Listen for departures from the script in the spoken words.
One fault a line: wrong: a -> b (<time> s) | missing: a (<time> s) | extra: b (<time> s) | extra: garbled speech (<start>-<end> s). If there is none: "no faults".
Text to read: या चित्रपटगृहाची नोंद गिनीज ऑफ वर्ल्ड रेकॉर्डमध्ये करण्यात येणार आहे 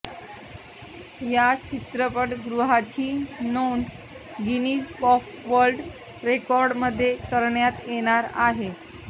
no faults